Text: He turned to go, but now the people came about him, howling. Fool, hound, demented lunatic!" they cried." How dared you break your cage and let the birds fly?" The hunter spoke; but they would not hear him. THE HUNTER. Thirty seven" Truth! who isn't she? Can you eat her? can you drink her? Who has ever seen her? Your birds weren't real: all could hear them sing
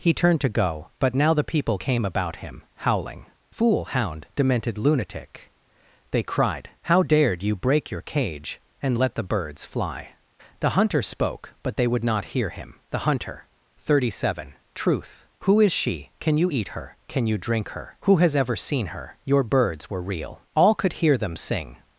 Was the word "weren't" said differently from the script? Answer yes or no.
yes